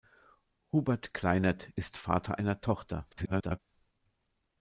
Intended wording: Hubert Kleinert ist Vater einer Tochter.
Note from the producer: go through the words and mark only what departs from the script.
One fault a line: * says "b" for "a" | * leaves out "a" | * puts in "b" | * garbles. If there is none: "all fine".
* garbles